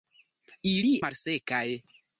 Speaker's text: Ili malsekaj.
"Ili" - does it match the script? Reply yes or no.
yes